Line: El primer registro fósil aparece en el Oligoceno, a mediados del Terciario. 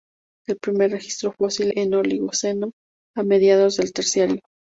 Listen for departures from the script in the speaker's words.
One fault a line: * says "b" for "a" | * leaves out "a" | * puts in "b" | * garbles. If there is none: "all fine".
* leaves out "aparece"